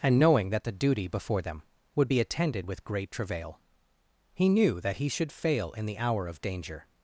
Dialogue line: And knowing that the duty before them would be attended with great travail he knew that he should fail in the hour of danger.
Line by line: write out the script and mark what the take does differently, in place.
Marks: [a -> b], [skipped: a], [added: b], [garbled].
And knowing that the duty before them would be attended with great travail he knew that he should fail in the hour of danger.